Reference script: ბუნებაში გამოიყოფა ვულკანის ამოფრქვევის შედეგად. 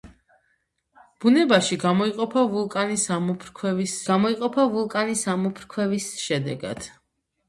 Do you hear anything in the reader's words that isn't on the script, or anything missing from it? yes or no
yes